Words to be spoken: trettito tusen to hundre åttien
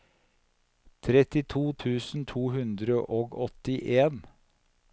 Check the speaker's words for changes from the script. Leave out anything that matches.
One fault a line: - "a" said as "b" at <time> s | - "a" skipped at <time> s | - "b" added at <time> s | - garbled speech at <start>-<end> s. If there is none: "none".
- "og" added at 3.2 s